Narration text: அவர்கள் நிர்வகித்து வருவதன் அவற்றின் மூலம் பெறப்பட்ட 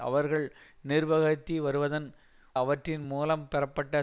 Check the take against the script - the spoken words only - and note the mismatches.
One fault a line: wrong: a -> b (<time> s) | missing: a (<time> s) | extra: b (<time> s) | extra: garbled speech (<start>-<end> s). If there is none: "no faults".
no faults